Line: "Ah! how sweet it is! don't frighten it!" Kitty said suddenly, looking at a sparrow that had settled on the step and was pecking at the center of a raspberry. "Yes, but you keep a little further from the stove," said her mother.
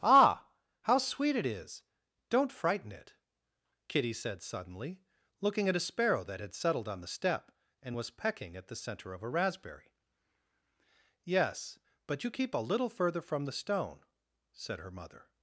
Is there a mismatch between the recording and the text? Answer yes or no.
yes